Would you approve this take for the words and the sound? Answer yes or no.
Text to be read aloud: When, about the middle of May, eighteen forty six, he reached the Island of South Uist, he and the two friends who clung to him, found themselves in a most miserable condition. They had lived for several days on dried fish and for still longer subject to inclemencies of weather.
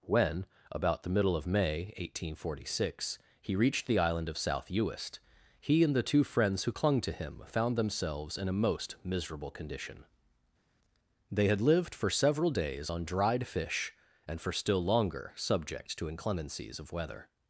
yes